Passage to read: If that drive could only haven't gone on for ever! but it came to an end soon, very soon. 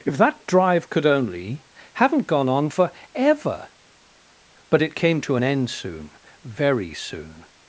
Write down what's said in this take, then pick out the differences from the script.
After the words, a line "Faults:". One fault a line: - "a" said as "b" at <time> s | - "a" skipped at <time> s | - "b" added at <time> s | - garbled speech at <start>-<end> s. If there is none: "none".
If that drive could only haven't gone on for ever! but it came to an end soon, very soon.
Faults:
none